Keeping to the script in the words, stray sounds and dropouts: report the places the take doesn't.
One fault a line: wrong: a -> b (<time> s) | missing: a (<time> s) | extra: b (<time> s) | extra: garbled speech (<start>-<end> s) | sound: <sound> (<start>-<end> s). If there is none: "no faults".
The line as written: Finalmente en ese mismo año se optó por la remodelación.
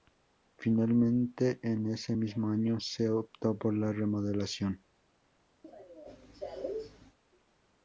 sound: cough (5.6-7.2 s)